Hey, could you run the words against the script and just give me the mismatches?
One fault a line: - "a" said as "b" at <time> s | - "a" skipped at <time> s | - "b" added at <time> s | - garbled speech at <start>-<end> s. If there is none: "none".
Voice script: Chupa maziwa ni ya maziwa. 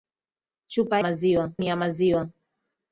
none